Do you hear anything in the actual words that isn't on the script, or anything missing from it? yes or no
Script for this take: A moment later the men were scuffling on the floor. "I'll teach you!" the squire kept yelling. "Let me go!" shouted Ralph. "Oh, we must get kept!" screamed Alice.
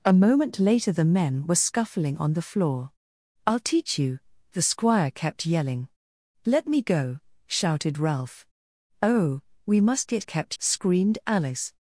no